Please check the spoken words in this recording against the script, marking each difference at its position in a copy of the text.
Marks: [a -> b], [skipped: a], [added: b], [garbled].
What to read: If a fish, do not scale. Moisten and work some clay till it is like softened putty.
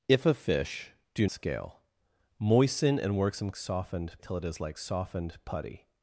If a fish, do [skipped: not] scale. Moisten and work some [clay -> softened] till it is like softened putty.